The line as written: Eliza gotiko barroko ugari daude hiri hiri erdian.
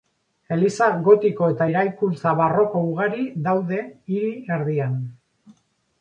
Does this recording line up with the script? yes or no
no